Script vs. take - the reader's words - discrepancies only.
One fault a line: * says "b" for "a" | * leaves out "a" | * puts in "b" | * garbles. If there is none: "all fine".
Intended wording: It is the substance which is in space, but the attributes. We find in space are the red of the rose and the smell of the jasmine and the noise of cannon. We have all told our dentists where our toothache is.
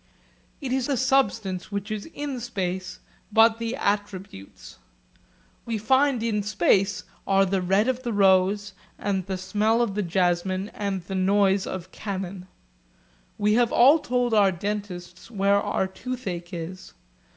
all fine